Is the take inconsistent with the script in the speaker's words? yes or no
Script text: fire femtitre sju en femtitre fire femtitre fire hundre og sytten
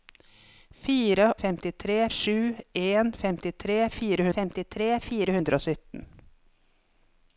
no